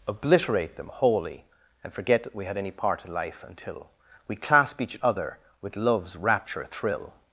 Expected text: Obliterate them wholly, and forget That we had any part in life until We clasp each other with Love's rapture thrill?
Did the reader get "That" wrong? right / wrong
right